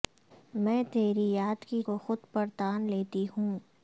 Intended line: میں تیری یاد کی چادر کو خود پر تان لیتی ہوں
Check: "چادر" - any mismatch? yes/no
yes